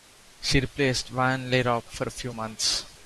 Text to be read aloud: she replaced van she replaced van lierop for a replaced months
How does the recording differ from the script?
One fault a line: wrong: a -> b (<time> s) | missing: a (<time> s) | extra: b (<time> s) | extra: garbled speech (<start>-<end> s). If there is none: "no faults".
missing: she replaced van (1.5 s)
wrong: replaced -> few (2.1 s)